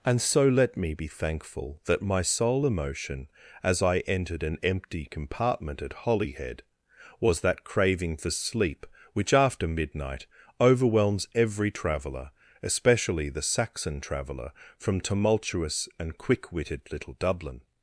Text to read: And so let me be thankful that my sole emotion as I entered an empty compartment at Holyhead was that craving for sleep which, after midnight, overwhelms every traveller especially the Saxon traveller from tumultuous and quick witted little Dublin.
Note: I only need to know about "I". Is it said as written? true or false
true